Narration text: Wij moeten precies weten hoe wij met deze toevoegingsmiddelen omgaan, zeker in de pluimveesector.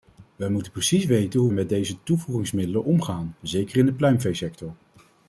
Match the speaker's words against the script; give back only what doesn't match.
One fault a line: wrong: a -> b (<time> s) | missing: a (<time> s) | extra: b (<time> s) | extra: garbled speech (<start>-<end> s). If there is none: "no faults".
missing: wij (1.5 s)